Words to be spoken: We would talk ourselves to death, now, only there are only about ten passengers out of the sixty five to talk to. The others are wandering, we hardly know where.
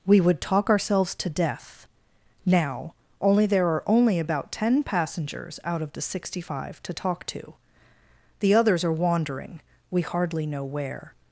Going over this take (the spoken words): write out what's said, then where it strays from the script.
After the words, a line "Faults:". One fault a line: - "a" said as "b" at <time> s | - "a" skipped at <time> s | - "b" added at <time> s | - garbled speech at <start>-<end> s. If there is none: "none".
We would talk ourselves to death, now, only there are only about ten passengers out of the sixty five to talk to. The others are wandering, we hardly know where.
Faults:
none